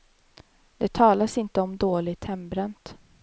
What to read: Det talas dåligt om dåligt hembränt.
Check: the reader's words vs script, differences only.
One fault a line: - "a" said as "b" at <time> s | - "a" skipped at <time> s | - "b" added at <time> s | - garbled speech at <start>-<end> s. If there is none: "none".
- "dåligt" said as "inte" at 1.4 s